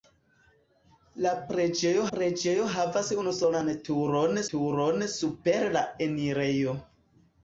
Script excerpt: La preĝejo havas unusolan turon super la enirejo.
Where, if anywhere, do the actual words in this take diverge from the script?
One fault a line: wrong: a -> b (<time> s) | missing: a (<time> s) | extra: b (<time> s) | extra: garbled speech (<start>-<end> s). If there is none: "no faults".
extra: preĝejo (2.1 s)
extra: turon (4.6 s)